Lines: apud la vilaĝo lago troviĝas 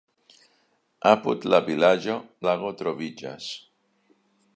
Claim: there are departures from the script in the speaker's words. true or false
false